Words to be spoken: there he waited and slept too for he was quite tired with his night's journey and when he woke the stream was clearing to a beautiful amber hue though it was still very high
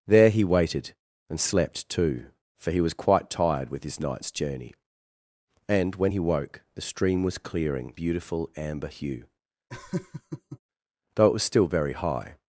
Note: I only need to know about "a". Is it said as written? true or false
false